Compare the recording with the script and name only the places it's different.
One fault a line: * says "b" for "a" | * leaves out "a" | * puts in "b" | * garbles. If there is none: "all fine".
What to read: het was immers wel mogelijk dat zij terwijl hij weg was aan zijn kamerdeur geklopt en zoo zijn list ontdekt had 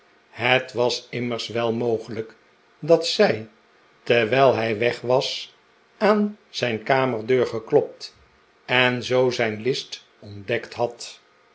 all fine